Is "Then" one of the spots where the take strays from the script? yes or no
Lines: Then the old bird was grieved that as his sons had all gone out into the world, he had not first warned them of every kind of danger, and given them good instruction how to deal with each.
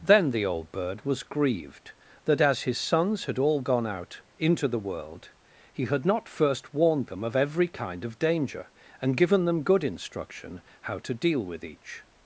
no